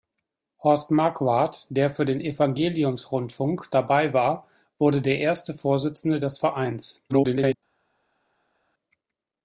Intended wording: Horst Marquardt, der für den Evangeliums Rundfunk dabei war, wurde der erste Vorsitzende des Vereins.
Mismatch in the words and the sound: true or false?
true